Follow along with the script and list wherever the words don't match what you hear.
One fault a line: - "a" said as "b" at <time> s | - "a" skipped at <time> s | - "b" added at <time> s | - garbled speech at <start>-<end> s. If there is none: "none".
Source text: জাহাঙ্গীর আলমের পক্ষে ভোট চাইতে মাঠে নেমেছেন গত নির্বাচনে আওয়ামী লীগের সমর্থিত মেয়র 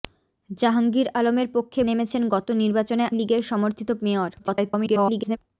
- "ভোট চাইতে মাঠে" skipped at 1.8 s
- "আওয়ামী" skipped at 3.0 s
- garbled speech at 4.4-5.4 s